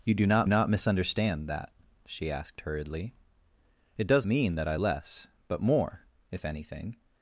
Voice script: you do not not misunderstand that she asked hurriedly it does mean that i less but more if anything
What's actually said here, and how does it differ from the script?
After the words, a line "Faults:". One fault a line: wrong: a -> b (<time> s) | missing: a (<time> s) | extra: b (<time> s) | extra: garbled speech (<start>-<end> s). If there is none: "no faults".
you do not not misunderstand that she asked hurriedly it does mean that i less but more if anything
Faults:
no faults